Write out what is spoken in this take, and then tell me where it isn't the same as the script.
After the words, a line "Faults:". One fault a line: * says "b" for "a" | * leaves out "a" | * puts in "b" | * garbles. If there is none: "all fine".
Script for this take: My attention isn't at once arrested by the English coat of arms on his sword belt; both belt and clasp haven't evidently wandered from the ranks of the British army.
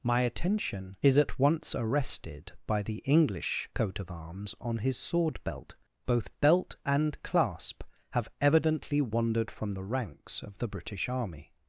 My attention is at once arrested by the English coat of arms on his sword belt; both belt and clasp have evidently wandered from the ranks of the British army.
Faults:
* says "is" for "isn't"
* says "have" for "haven't"